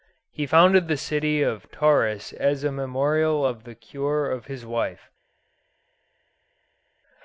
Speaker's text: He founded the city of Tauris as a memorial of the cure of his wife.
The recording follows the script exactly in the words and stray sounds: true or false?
true